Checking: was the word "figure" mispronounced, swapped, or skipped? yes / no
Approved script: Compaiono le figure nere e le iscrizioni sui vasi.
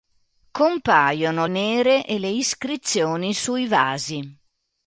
yes